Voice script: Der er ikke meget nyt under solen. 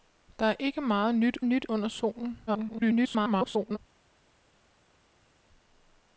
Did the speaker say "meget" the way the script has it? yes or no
yes